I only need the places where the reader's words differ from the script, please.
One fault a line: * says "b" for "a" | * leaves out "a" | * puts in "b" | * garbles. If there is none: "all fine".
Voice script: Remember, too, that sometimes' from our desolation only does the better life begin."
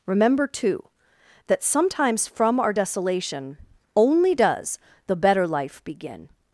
all fine